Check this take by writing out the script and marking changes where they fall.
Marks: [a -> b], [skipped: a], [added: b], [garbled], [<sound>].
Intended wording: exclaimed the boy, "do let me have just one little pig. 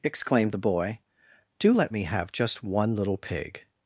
exclaimed the boy, "do let me have just one little pig.